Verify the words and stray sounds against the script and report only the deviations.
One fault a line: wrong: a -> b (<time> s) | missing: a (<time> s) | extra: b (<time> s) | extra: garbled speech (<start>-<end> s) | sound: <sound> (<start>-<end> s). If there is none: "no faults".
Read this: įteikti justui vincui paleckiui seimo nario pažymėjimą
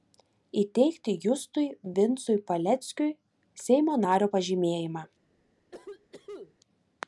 sound: cough (5.7-6.5 s)